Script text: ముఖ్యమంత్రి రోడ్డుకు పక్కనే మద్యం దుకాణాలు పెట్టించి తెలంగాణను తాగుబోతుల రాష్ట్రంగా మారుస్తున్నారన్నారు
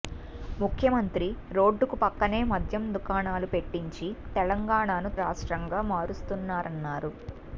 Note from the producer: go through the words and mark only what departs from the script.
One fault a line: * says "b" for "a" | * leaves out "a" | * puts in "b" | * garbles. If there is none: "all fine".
* leaves out "తాగుబోతుల"